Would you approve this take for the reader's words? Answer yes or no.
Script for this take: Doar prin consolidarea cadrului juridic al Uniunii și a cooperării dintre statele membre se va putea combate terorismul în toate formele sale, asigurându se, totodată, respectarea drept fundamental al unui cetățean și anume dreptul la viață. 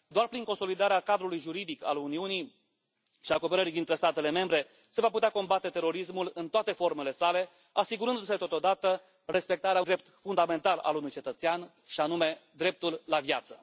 yes